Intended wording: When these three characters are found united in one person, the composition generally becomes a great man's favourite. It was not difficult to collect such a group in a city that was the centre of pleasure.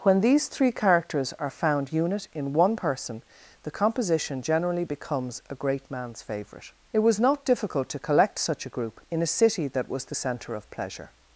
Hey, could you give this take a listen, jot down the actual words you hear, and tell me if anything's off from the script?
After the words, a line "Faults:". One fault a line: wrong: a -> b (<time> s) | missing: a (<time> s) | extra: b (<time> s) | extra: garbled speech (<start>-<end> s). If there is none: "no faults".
When these three characters are found unit in one person, the composition generally becomes a great man's favourite. It was not difficult to collect such a group in a city that was the centre of pleasure.
Faults:
wrong: united -> unit (1.9 s)